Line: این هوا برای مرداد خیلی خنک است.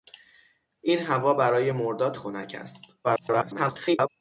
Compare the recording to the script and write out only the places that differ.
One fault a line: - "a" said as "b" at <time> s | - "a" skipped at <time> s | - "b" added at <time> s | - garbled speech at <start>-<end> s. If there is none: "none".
- "خیلی" skipped at 2.2 s
- garbled speech at 3.0-4.1 s